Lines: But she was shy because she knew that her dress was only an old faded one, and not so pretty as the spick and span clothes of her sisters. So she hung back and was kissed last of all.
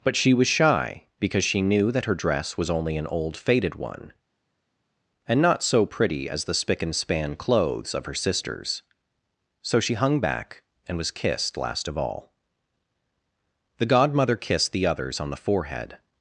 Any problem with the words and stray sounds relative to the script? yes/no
yes